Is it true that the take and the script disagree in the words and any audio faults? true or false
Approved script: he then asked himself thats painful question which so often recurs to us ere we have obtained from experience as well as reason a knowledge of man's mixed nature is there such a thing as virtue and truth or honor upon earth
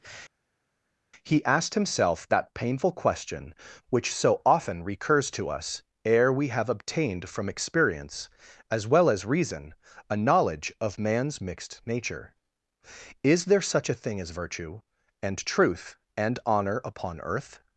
true